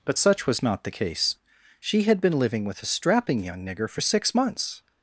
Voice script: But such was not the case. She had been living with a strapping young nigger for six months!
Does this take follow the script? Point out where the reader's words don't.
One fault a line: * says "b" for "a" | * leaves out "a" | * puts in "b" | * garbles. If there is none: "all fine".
all fine